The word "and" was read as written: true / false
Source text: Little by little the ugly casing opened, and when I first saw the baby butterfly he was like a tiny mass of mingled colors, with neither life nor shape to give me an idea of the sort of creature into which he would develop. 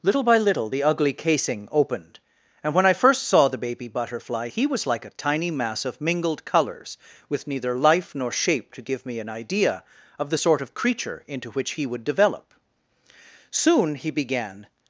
true